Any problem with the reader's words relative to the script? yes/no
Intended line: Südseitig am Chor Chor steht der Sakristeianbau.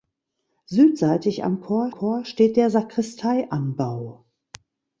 no